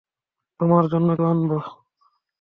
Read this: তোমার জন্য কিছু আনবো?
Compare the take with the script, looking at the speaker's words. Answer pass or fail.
fail